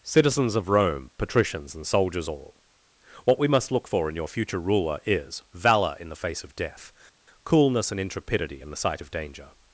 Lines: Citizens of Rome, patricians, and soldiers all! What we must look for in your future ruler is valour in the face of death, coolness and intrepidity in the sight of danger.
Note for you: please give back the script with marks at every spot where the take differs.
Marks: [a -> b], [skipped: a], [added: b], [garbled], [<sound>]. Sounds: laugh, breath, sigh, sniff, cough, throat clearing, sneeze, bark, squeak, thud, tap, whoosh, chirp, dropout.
Citizens of Rome, patricians, and soldiers all! What we must look for in your future ruler is valour in the face of death, coolness and intrepidity in the sight of danger.